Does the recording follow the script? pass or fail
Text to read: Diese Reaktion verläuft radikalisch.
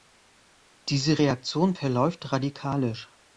pass